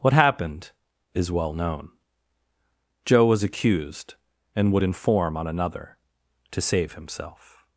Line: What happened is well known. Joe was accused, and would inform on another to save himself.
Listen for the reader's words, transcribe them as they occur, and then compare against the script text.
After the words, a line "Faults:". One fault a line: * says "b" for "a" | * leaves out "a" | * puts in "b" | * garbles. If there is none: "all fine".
What happened is well known. Joe was accused, and would inform on another to save himself.
Faults:
all fine